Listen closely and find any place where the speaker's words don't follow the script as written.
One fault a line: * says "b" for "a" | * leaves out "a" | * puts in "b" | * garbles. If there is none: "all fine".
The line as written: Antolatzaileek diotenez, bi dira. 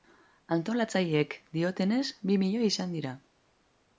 * puts in "milioi izan"